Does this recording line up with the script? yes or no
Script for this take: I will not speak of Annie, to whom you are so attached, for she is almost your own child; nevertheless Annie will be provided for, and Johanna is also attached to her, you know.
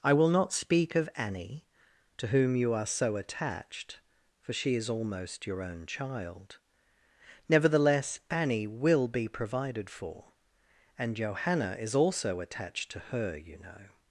yes